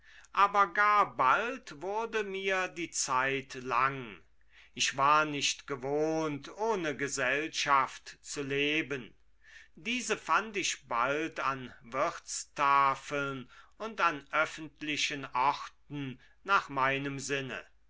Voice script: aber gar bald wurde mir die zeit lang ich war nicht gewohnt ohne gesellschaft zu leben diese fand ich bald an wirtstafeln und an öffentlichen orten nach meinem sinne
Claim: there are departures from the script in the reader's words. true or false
false